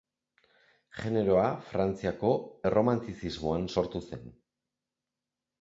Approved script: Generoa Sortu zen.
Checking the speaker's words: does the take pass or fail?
fail